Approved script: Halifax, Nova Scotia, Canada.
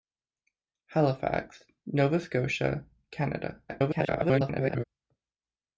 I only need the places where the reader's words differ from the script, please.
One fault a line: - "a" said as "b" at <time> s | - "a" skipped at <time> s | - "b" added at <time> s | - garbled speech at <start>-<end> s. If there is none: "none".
- garbled speech at 3.7-4.8 s